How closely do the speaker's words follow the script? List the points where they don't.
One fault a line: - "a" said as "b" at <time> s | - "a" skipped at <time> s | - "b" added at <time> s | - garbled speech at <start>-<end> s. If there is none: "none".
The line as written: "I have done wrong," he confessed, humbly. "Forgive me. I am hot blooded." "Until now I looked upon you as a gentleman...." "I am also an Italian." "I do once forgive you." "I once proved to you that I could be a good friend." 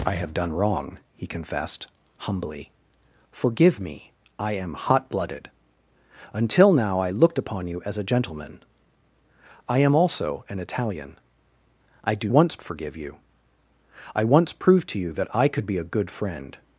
none